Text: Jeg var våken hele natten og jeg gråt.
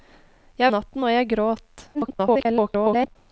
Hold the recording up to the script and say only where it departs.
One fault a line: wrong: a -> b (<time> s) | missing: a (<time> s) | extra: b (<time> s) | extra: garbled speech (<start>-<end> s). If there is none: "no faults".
missing: var våken hele (0.7 s)
extra: garbled speech (1.9-3.2 s)